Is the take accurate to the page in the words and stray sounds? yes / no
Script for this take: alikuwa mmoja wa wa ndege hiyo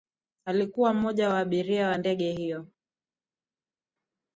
no